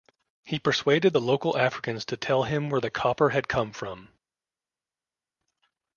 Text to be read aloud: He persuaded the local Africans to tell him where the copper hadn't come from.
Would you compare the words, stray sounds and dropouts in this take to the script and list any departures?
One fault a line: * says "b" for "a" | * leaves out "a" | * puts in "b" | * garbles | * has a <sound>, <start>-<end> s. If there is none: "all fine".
* says "had" for "hadn't"